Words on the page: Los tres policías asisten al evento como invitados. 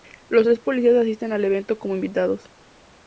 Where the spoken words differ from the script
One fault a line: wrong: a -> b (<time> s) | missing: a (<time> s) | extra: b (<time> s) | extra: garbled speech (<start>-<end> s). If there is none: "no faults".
no faults